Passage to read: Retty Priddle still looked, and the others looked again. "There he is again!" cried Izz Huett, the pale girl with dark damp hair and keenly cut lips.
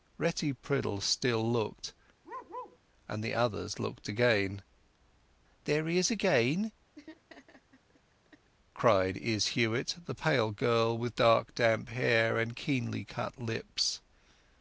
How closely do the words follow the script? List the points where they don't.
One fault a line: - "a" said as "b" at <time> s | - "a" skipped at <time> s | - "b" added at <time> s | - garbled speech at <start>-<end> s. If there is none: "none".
none